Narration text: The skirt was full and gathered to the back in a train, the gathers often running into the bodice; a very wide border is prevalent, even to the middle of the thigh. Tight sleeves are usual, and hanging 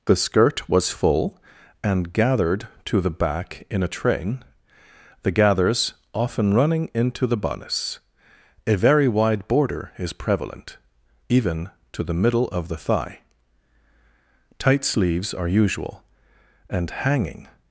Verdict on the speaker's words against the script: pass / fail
pass